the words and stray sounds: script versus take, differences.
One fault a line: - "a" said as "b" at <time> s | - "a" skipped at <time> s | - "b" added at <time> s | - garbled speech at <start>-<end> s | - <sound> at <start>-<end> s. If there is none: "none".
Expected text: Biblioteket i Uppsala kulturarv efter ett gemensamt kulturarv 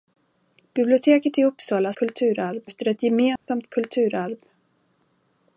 - dropout at 3.4-3.5 s